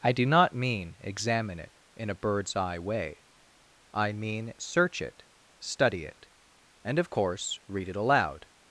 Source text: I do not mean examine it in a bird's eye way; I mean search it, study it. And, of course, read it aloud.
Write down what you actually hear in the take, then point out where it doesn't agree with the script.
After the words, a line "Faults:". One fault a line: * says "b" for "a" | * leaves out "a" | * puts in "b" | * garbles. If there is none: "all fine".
I do not mean examine it in a bird's eye way; I mean search it, study it. And, of course, read it aloud.
Faults:
all fine